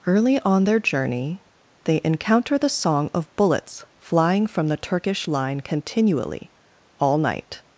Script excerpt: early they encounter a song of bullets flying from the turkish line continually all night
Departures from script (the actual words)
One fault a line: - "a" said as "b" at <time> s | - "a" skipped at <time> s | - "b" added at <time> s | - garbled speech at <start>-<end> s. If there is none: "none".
- "on their journey" added at 0.4 s
- "a" said as "the" at 2.6 s